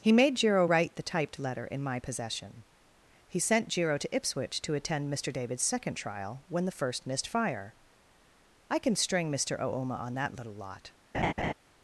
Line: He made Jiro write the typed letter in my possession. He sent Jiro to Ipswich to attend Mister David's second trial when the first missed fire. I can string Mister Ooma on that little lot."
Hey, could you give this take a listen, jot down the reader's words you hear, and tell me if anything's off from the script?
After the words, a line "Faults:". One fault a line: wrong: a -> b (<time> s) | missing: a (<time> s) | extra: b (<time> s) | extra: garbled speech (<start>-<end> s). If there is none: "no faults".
He made Jiro write the typed letter in my possession. He sent Jiro to Ipswich to attend Mister David's second trial when the first missed fire. I can string Mister Ooma on that little lot."
Faults:
no faults